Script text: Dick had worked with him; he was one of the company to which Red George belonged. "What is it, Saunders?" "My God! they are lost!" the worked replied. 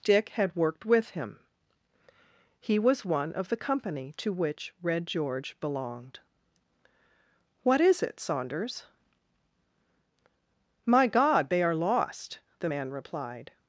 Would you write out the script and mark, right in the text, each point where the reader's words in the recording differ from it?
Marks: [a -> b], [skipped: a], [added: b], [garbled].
Dick had worked with him; he was one of the company to which Red George belonged. "What is it, Saunders?" "My God! they are lost!" the [worked -> man] replied.